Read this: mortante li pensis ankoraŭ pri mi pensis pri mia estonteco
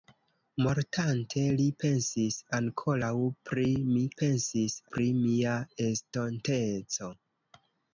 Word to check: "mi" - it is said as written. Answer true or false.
true